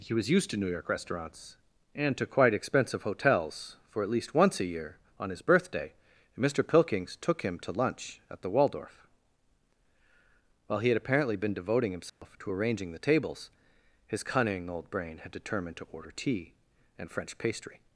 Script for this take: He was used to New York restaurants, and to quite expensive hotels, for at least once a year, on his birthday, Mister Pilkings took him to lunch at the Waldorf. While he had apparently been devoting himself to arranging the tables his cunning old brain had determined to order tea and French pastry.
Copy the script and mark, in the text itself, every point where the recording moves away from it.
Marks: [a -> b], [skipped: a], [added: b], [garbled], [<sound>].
He was used to New York restaurants, and to quite expensive hotels, for at least once a year, on his birthday, Mister Pilkings took him to lunch at the Waldorf. While he had apparently been devoting himself [dropout] to arranging the tables his cunning old brain had determined to order tea and French pastry.